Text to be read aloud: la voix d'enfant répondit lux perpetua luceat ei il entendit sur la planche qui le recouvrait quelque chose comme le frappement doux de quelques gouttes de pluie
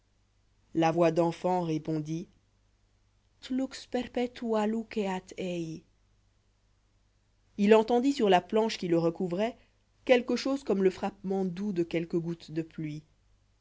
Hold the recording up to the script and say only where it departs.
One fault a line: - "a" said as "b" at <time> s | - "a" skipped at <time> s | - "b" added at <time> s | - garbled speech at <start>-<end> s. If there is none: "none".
none